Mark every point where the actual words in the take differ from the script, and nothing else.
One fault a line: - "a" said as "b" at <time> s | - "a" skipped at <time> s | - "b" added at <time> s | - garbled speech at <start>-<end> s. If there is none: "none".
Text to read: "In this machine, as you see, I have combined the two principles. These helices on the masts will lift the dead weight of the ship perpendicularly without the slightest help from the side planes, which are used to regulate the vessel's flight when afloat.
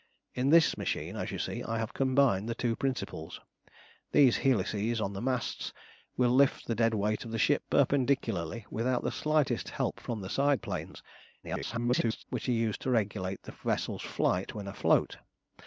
- garbled speech at 11.4-12.2 s